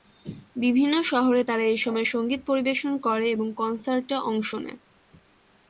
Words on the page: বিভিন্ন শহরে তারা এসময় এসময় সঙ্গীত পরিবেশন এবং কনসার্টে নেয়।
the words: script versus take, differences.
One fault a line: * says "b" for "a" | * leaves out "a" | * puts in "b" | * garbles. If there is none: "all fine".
* leaves out "এসময়"
* puts in "করে"
* puts in "অংশ"